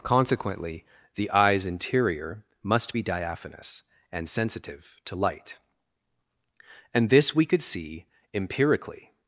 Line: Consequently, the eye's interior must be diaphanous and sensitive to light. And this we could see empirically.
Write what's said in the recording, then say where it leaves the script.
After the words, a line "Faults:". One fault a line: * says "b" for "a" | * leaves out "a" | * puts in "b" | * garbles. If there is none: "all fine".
Consequently, the eye's interior must be diaphanous and sensitive to light. And this we could see empirically.
Faults:
all fine